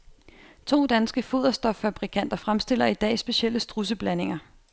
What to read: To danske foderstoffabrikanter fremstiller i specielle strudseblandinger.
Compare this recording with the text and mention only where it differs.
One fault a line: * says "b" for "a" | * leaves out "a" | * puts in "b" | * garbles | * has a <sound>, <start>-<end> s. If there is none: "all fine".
* puts in "dag"